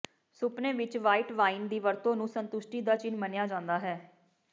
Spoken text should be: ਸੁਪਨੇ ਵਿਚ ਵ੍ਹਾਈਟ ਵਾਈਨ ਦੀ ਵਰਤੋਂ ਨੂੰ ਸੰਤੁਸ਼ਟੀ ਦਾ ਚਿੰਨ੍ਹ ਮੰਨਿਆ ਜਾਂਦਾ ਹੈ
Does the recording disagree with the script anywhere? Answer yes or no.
no